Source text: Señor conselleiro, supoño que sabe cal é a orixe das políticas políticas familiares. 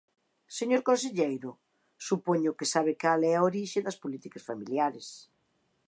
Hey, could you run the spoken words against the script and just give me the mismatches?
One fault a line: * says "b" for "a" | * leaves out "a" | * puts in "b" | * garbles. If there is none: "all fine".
* leaves out "políticas"